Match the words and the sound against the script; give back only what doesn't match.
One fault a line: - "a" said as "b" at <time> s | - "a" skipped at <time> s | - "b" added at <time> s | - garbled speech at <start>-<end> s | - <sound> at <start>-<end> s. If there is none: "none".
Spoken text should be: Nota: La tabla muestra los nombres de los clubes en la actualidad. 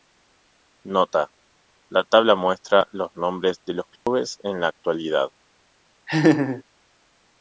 - dropout at 4.0-4.1 s
- laugh at 6.1-6.6 s